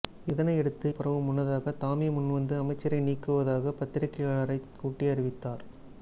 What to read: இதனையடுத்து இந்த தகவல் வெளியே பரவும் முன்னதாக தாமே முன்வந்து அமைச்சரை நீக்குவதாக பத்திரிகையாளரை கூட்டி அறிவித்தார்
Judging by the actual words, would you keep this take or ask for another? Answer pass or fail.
fail